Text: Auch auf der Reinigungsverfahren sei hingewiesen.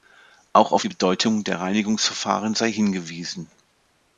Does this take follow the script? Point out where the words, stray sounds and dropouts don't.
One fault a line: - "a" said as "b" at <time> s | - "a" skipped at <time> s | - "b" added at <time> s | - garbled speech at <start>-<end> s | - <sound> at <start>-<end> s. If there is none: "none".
- "die Bedeutung" added at 0.8 s